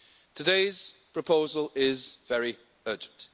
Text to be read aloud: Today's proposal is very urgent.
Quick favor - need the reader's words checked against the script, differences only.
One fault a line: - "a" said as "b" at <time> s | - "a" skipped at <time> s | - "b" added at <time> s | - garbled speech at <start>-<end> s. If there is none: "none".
none